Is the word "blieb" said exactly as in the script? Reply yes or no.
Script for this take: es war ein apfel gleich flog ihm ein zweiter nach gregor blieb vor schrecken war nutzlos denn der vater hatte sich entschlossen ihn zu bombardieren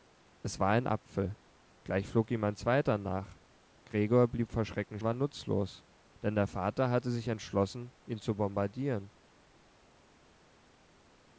yes